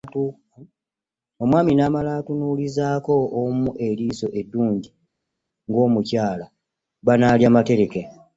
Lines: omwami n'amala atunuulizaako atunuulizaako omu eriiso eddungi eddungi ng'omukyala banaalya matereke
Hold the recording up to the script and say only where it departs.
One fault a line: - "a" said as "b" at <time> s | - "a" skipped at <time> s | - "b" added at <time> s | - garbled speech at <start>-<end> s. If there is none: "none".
- "atunuulizaako" skipped at 3.1 s
- "eddungi" skipped at 4.9 s